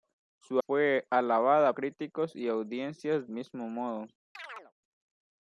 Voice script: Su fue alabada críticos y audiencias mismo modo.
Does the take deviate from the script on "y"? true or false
false